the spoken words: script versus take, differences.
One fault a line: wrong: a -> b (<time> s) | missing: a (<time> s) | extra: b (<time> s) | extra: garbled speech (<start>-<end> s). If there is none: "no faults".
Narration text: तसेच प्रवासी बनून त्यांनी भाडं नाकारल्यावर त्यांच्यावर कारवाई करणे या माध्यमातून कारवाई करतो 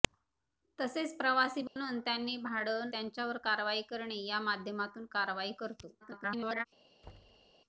missing: नाकारल्यावर (2.9 s)
extra: garbled speech (6.0-6.7 s)